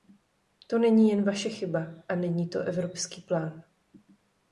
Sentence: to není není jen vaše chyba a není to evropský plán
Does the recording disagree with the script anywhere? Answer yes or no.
yes